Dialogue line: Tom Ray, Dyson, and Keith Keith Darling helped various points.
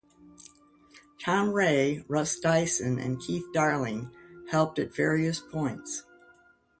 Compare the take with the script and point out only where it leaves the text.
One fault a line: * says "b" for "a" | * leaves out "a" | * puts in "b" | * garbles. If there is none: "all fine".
* puts in "Russ"
* leaves out "Keith"
* puts in "at"